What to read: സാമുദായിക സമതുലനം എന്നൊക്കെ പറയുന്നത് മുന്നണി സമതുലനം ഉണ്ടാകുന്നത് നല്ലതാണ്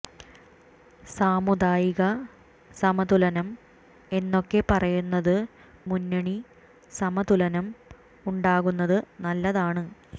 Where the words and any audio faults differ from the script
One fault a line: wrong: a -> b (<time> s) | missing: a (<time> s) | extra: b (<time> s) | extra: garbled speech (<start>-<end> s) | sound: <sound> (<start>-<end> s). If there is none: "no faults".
no faults